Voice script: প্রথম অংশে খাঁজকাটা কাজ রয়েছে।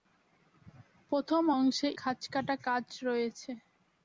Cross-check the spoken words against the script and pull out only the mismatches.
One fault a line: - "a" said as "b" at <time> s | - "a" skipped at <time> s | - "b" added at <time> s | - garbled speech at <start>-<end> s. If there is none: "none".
none